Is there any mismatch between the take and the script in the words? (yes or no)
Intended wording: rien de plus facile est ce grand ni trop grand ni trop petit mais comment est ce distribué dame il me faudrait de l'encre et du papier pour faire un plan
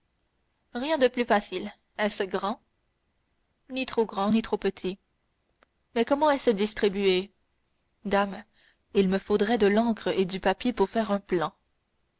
no